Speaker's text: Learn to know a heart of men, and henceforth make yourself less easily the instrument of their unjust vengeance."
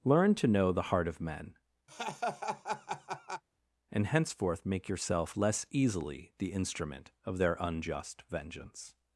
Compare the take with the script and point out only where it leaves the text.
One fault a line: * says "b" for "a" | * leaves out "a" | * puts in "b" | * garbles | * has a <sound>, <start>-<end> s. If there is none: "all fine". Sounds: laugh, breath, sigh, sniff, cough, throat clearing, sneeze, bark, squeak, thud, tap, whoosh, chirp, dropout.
* says "the" for "a"
* has a laugh, 1.9-3.4 s